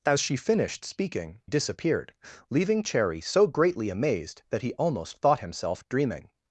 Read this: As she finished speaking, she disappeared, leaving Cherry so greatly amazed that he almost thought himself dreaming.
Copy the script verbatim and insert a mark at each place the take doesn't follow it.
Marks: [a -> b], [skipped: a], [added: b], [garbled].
As she finished speaking, [skipped: she] disappeared, leaving Cherry so greatly amazed that he almost thought himself dreaming.